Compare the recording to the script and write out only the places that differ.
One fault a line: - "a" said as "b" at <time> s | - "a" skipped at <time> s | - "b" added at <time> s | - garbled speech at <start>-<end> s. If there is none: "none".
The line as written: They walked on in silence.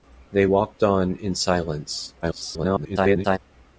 - garbled speech at 2.2-3.4 s